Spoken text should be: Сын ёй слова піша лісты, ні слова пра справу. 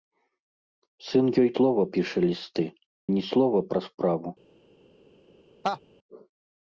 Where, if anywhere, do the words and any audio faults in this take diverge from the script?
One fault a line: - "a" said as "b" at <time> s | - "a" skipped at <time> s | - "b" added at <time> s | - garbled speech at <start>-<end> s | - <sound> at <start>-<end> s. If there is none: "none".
- laugh at 5.6-5.8 s